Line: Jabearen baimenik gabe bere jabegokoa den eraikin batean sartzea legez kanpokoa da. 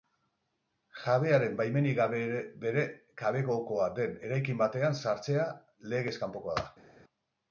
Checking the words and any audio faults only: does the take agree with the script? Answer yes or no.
yes